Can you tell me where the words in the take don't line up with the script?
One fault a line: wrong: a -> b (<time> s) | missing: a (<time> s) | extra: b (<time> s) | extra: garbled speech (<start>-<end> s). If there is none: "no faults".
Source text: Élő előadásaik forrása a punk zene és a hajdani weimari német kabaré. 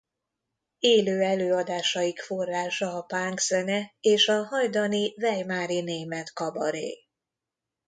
no faults